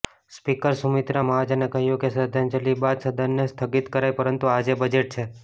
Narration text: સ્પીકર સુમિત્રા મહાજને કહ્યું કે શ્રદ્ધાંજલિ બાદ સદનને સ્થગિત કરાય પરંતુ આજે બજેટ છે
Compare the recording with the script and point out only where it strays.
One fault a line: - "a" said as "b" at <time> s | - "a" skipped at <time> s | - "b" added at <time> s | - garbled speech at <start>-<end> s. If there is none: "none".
none